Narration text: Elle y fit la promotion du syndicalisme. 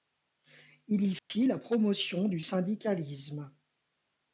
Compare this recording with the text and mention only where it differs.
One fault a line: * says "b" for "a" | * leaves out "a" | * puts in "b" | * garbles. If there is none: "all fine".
* says "Il" for "Elle"